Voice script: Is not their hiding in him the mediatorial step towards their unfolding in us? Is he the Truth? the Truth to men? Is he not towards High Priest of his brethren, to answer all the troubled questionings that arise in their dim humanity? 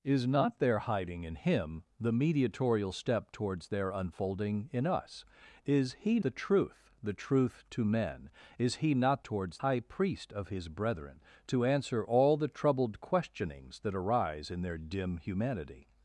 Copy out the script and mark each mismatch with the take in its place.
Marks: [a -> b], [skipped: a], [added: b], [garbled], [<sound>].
Is not their hiding in him the mediatorial step towards their unfolding in us? Is he the Truth? the Truth to men? Is he not towards High Priest of his brethren, to answer all the troubled questionings that arise in their dim humanity?